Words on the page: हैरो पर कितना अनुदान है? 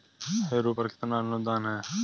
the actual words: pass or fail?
pass